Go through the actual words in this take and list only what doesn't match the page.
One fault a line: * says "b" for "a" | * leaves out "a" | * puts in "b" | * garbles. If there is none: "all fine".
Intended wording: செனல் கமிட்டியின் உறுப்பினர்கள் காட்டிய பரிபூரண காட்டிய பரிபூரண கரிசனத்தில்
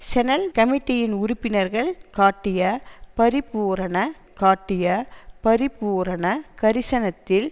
all fine